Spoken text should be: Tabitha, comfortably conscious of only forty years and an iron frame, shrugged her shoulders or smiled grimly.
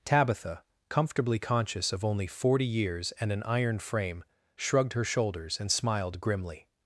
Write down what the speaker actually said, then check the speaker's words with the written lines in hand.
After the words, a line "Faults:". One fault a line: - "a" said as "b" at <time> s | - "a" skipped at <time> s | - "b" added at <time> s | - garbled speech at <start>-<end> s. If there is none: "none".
Tabitha, comfortably conscious of only forty years and an iron frame, shrugged her shoulders and smiled grimly.
Faults:
- "or" said as "and" at 5.6 s